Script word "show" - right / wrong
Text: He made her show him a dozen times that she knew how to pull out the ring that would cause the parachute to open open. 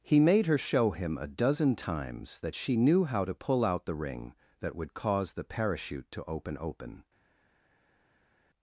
right